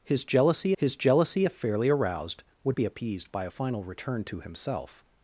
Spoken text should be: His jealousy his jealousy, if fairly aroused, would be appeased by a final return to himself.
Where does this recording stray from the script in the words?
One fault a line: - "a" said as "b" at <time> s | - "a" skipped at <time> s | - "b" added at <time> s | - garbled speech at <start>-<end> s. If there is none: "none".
none